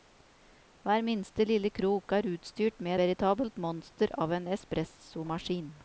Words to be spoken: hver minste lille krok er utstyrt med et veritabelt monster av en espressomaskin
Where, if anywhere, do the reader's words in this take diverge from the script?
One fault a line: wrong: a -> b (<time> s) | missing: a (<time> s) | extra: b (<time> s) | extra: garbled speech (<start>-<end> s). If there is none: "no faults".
missing: et (3.0 s)